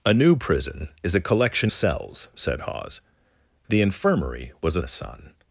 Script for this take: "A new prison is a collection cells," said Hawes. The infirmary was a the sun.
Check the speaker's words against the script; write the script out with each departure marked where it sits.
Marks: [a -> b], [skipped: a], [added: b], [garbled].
"A new prison is a collection cells," said Hawes. The infirmary was a the sun.